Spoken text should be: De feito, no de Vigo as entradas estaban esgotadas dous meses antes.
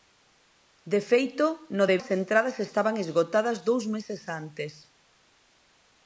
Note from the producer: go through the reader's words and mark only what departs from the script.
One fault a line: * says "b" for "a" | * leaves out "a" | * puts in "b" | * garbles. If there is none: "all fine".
* leaves out "Vigo"